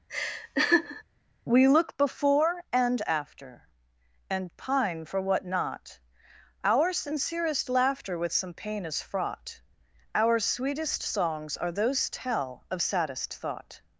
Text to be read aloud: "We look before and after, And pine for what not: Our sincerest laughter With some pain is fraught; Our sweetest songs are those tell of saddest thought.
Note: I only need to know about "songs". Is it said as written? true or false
true